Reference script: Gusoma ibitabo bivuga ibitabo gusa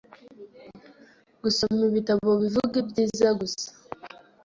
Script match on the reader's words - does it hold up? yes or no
no